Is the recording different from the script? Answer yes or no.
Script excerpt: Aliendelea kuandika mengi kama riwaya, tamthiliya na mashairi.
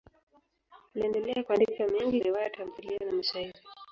yes